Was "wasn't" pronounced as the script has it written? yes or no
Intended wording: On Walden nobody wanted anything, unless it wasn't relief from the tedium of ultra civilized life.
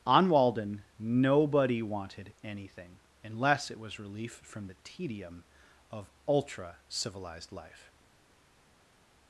no